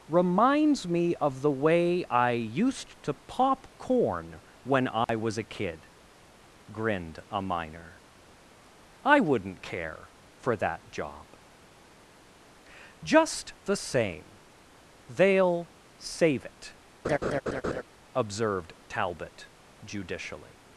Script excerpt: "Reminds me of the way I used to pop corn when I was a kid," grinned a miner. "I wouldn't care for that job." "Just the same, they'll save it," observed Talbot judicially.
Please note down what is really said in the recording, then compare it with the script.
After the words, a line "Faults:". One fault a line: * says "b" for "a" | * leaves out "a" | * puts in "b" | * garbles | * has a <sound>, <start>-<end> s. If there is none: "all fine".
"Reminds me of the way I used to pop corn when I was a kid," grinned a miner. "I wouldn't care for that job." "Just the same, they'll save it," observed Talbot judicially.
Faults:
* has a dropout, 5.0-5.1 s
* has a laugh, 17.0-17.8 s